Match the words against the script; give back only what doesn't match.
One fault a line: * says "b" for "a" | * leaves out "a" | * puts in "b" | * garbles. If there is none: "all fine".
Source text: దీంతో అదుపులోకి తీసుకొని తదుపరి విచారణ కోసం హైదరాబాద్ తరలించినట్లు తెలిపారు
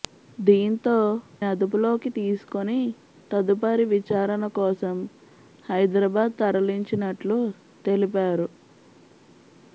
all fine